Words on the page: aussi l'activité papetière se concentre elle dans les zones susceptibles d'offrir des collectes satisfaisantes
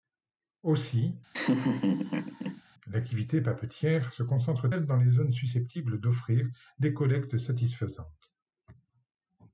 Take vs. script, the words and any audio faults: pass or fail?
fail